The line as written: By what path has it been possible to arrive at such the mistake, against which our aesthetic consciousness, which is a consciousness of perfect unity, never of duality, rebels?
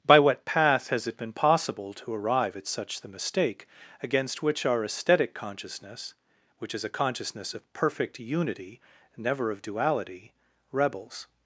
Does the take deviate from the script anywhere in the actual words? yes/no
no